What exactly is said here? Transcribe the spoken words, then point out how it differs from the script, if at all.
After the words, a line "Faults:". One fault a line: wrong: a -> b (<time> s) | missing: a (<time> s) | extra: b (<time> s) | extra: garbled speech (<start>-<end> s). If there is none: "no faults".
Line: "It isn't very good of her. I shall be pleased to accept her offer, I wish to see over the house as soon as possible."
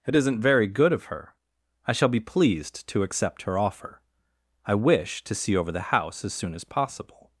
"It isn't very good of her. I shall be pleased to accept her offer, I wish to see over the house as soon as possible."
Faults:
no faults